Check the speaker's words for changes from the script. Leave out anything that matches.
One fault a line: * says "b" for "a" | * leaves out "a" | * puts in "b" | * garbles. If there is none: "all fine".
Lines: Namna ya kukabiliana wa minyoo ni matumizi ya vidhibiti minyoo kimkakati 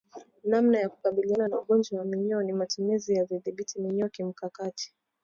* puts in "na ugonjwa"